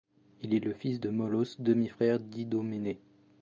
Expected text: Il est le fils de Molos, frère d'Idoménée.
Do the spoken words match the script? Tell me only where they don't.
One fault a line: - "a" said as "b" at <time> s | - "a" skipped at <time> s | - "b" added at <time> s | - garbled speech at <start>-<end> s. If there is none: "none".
- "demi" added at 1.6 s